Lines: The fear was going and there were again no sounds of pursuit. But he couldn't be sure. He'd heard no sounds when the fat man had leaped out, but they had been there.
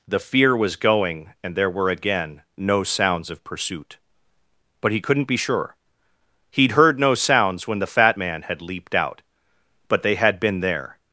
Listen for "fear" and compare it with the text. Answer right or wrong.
right